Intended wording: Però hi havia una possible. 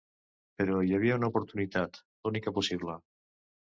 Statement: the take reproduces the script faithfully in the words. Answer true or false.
false